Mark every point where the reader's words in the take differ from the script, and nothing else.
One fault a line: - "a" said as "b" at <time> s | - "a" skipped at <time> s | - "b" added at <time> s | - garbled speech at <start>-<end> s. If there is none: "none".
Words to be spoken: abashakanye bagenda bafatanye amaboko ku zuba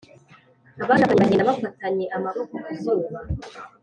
none